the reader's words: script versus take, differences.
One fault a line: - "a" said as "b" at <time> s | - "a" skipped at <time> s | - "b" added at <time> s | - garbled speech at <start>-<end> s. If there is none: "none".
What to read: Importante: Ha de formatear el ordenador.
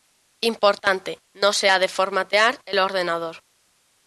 - "No se" added at 1.3 s